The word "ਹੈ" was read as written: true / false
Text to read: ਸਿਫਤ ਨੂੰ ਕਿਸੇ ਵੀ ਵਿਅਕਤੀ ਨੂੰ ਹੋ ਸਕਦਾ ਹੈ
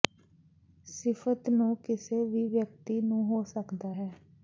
true